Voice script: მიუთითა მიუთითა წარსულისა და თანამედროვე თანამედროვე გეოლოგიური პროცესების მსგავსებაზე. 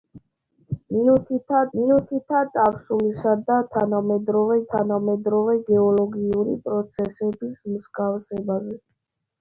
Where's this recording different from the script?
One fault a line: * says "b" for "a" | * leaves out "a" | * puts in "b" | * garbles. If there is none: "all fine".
all fine